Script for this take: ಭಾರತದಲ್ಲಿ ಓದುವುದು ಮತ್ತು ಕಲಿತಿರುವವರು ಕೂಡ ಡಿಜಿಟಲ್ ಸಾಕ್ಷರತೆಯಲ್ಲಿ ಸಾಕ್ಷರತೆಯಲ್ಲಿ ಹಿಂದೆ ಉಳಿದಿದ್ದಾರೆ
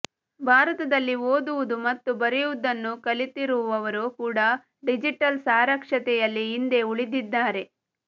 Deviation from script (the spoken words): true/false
true